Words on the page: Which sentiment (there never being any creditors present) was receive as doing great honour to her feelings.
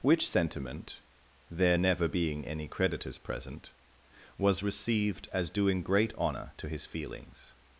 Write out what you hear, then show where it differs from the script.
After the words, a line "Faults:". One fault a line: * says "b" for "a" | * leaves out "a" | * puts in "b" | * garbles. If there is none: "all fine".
Which sentiment (there never being any creditors present) was received as doing great honour to his feelings.
Faults:
* says "received" for "receive"
* says "his" for "her"